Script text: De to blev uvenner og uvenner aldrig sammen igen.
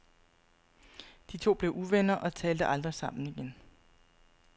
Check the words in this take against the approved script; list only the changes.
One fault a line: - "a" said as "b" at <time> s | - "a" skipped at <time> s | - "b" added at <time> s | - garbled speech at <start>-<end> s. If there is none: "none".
- "uvenner" said as "talte" at 2.4 s